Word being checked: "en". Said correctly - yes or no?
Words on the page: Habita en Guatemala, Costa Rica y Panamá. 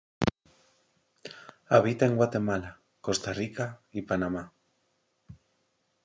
yes